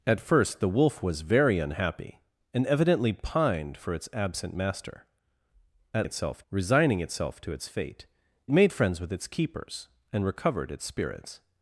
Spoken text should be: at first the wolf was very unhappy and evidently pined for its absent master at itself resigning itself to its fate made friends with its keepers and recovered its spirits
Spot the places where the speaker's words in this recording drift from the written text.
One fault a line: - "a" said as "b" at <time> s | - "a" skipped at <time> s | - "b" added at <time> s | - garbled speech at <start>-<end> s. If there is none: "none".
none